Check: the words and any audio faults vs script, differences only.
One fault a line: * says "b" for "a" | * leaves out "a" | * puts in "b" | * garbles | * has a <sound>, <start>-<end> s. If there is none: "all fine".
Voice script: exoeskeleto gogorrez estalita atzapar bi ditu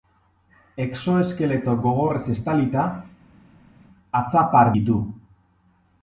* leaves out "bi"